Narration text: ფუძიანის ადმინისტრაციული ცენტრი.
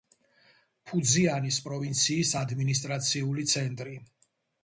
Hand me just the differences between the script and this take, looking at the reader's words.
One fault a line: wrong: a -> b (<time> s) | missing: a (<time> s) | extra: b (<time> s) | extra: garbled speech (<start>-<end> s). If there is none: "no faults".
extra: პროვინციის (1.7 s)